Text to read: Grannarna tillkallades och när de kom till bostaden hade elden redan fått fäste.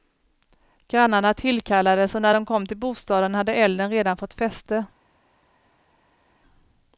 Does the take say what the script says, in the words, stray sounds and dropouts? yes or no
yes